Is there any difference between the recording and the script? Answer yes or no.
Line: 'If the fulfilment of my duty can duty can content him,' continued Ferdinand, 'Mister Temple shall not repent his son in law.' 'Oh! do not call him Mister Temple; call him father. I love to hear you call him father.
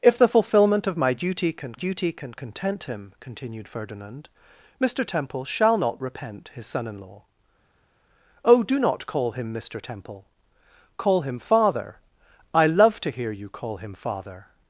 no